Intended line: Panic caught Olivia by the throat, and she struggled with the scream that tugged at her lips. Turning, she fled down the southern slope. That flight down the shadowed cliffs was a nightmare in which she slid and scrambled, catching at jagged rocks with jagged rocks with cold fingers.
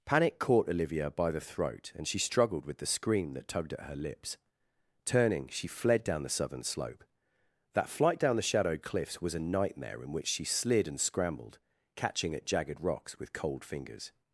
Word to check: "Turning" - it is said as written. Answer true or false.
true